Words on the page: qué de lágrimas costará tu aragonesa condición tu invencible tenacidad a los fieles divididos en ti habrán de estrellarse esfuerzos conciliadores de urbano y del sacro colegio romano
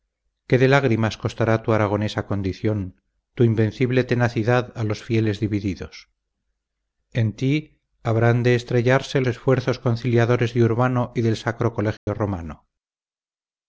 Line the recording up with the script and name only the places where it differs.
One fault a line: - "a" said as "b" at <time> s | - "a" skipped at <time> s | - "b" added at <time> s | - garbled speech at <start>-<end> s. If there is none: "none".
none